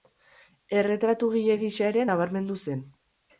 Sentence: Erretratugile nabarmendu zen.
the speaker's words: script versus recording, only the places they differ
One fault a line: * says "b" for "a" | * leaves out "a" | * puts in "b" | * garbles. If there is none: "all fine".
* puts in "gisa ere"